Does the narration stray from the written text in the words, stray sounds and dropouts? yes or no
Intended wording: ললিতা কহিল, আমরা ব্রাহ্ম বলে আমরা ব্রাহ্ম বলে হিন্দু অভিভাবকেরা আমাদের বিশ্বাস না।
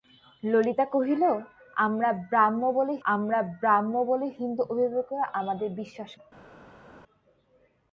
no